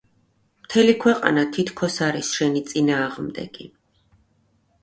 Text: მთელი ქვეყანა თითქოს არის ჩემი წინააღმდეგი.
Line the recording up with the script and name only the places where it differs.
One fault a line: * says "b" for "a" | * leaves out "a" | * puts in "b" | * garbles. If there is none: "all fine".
* says "შენი" for "ჩემი"